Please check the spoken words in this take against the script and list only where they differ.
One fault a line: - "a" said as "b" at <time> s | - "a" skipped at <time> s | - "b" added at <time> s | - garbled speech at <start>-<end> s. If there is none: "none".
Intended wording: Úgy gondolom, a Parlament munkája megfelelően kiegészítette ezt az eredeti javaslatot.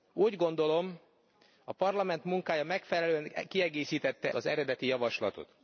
- "ezt" skipped at 4.3 s